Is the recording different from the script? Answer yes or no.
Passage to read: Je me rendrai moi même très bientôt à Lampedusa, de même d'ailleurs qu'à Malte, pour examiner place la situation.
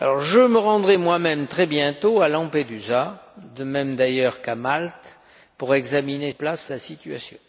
no